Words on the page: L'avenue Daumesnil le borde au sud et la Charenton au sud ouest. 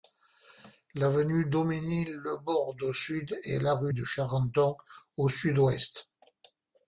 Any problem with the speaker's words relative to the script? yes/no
yes